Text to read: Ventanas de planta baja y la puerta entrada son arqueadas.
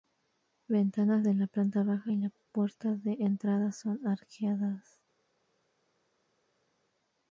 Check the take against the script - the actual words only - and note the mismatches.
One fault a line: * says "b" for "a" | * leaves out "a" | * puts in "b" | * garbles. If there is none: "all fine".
* puts in "la"
* puts in "de"